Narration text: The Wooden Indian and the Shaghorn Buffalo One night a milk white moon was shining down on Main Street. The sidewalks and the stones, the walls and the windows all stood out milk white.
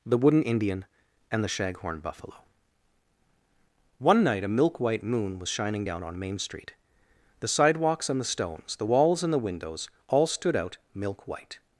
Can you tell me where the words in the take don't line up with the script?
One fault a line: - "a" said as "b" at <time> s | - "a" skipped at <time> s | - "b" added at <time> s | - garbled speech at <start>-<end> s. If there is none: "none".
none